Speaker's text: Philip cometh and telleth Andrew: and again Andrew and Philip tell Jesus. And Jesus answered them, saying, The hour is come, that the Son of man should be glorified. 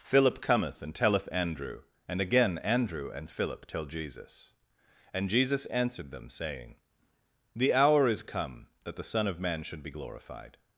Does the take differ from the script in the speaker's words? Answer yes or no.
no